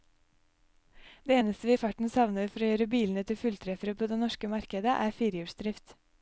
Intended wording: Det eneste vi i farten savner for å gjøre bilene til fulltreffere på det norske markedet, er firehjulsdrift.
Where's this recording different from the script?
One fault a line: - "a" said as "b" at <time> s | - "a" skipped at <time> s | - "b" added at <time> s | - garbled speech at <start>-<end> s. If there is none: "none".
none